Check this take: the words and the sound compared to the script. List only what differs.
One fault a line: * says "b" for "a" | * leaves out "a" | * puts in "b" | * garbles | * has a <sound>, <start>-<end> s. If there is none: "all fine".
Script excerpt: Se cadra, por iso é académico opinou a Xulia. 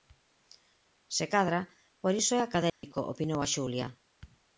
* has a dropout, 2.7-2.8 s